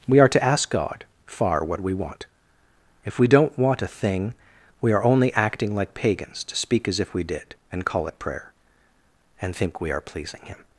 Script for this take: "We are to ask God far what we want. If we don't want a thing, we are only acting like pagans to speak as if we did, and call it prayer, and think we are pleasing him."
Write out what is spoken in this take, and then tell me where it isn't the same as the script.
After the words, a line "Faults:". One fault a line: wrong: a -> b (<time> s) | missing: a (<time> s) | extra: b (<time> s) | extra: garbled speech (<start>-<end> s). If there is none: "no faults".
"We are to ask God far what we want. If we don't want a thing, we are only acting like pagans to speak as if we did, and call it prayer, and think we are pleasing him."
Faults:
no faults